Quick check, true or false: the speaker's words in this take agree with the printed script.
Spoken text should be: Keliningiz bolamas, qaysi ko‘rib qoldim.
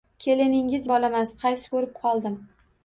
true